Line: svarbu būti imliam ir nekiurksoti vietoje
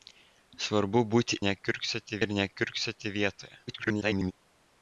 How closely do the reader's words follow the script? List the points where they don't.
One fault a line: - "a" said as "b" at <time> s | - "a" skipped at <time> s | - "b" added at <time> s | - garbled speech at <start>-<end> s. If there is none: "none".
- "imliam" said as "nekiurksoti" at 1.5 s
- garbled speech at 3.7-4.3 s